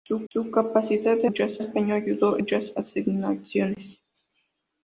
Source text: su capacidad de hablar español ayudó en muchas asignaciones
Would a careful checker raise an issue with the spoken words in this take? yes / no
yes